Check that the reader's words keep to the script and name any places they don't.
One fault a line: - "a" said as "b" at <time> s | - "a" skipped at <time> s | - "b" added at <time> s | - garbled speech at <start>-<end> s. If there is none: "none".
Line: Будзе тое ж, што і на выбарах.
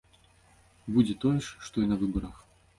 none